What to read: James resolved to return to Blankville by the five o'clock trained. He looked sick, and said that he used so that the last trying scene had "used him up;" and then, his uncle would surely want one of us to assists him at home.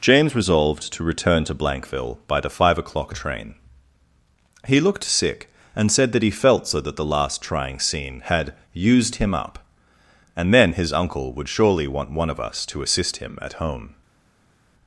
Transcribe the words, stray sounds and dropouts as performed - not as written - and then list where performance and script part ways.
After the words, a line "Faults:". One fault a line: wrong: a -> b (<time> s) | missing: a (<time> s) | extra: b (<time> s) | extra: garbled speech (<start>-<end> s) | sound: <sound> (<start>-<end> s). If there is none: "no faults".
James resolved to return to Blankville by the five o'clock train. He looked sick, and said that he felt so that the last trying scene had "used him up;" and then, his uncle would surely want one of us to assist him at home.
Faults:
wrong: trained -> train (3.1 s)
wrong: used -> felt (6.3 s)
wrong: assists -> assist (12.8 s)